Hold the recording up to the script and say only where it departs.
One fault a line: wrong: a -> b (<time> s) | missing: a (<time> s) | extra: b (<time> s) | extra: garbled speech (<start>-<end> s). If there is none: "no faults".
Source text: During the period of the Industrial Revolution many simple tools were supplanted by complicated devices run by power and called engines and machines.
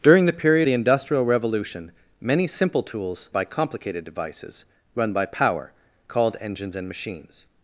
missing: of (0.7 s)
missing: were supplanted (3.3 s)
missing: and (5.7 s)